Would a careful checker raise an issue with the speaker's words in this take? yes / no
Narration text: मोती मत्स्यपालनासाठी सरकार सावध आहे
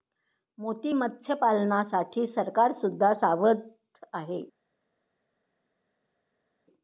yes